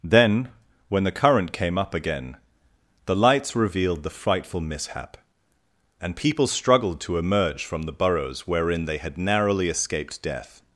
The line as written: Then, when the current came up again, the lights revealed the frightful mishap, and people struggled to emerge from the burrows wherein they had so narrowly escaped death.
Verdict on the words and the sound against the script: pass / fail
fail